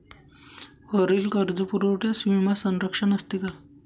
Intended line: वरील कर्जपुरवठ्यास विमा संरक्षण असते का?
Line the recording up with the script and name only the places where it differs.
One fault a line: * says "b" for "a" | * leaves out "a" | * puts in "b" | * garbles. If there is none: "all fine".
all fine